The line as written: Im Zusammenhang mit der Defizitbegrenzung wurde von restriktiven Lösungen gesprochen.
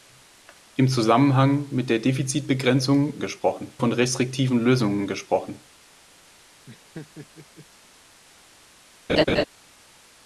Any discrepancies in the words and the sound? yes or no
yes